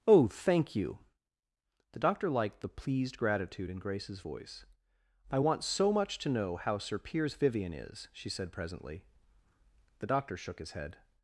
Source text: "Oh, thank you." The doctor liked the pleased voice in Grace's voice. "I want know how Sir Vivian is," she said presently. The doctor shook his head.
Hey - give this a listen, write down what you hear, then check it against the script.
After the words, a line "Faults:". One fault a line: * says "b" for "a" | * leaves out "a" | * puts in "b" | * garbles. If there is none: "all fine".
"Oh, thank you." The doctor liked the pleased gratitude in Grace's voice. "I want so much to know how Sir Piers Vivian is," she said presently. The doctor shook his head.
Faults:
* says "gratitude" for "voice"
* puts in "so much to"
* puts in "Piers"